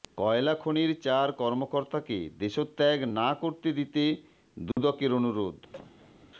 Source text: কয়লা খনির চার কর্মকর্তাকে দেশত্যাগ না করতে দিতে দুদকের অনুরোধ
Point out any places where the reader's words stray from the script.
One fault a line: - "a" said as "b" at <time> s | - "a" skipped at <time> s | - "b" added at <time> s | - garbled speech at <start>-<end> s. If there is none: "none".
none